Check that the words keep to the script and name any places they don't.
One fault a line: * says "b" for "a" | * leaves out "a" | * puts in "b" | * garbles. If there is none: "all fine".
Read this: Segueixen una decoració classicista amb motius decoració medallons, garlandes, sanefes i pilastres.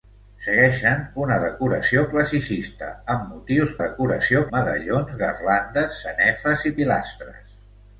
all fine